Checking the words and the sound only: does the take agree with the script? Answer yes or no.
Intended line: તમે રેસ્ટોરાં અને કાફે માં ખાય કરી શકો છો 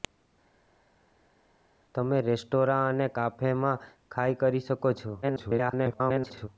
no